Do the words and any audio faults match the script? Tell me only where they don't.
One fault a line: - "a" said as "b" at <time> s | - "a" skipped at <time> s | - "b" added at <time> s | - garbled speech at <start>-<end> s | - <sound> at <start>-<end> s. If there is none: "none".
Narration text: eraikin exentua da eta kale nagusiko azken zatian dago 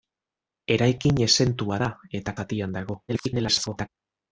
- "kale nagusiko azken" skipped at 2.4 s
- garbled speech at 3.1-3.9 s